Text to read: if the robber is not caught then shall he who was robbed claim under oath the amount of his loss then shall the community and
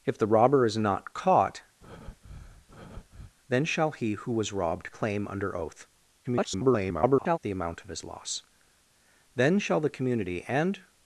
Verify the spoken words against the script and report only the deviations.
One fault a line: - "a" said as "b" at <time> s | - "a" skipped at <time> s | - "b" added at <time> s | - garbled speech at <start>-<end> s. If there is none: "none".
- garbled speech at 6.2-7.4 s